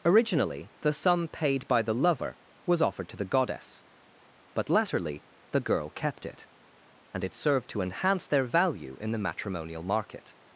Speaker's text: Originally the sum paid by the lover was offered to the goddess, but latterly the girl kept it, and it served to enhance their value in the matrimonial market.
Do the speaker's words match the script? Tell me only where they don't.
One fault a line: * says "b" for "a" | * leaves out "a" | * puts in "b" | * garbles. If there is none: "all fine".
all fine